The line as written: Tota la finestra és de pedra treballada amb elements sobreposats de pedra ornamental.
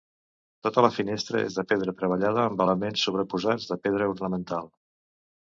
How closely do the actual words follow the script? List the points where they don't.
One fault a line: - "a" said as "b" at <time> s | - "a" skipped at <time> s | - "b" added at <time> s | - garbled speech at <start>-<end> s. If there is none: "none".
none